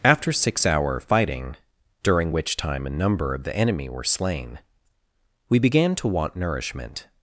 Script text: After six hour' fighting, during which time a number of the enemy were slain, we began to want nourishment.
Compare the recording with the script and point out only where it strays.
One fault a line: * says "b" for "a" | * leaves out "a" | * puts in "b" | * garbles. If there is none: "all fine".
all fine